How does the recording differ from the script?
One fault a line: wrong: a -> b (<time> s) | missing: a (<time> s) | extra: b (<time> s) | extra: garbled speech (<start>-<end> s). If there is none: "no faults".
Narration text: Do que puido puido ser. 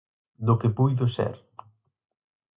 missing: puido (1.0 s)